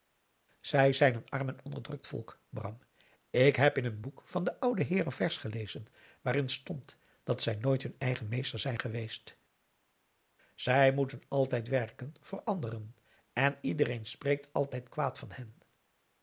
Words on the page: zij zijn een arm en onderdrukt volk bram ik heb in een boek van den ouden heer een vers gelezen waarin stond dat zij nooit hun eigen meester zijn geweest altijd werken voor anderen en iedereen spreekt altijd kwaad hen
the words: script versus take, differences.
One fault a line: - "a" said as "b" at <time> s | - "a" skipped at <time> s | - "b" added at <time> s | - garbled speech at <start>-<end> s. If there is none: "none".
- "zij moeten" added at 10.5 s
- "van" added at 15.2 s